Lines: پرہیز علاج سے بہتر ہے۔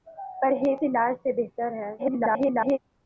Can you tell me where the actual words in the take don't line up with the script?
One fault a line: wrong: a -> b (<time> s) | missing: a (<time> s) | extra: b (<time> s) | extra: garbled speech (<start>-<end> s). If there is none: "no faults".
extra: garbled speech (2.0-2.8 s)